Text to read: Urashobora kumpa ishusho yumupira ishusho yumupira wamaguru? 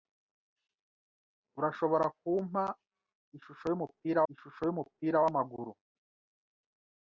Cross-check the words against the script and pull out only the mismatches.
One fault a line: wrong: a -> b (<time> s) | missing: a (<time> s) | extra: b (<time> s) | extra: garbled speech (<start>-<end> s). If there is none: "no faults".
no faults